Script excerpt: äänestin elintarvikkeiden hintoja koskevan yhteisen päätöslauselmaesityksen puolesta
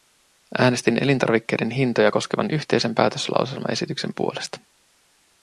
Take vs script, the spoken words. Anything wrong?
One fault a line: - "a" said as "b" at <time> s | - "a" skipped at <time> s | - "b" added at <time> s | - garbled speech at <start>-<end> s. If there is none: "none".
none